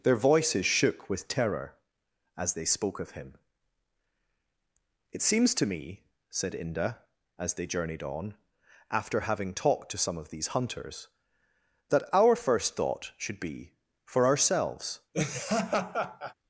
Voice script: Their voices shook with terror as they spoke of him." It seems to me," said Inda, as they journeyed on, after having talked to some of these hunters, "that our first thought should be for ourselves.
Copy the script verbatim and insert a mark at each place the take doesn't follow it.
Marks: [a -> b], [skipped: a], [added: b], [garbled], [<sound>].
Their voices shook with terror as they spoke of him." It seems to me," said Inda, as they journeyed on, after having talked to some of these hunters, "that our first thought should be for ourselves. [laugh]